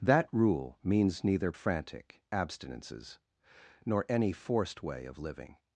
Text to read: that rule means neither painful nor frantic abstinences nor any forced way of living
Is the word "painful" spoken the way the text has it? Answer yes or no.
no